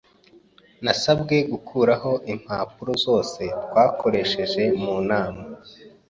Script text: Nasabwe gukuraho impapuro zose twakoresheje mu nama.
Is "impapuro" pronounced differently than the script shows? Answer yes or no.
no